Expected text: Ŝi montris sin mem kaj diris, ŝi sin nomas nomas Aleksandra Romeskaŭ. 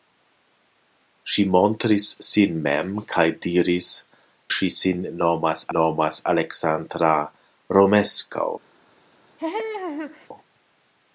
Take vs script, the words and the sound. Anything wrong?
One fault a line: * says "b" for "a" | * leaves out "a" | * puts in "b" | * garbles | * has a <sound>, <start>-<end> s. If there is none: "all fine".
* has a laugh, 9.4-10.3 s